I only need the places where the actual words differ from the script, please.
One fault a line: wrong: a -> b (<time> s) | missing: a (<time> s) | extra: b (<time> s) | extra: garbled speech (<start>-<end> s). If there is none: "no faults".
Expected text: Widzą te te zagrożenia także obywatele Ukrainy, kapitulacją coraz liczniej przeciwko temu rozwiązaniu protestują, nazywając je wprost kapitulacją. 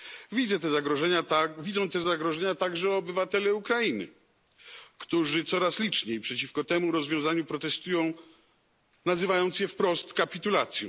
missing: te (2.0 s)
wrong: kapitulacją -> którzy (5.0 s)